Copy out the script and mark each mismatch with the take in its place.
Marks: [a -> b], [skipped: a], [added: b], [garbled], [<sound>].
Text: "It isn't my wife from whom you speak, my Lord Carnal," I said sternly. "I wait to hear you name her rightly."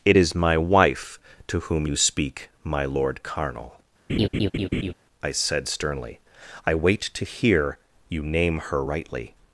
"It [isn't -> is] my wife [from -> to] whom you speak, my Lord Carnal," [laugh] I said sternly. "I wait to hear you name her rightly."